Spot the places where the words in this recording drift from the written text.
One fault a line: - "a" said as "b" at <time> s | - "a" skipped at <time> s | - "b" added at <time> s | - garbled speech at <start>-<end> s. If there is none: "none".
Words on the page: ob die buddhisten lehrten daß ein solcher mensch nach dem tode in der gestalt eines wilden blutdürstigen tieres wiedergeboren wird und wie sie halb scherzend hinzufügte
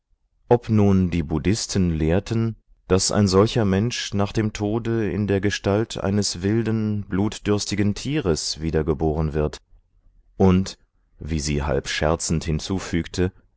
- "nun" added at 0.7 s